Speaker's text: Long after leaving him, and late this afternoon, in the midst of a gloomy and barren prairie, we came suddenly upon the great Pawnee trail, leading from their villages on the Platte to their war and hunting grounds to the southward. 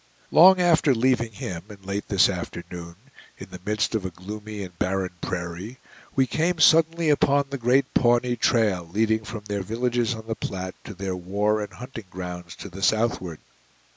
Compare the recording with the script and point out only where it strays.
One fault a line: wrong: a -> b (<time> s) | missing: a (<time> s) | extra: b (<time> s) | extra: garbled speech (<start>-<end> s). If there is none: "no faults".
no faults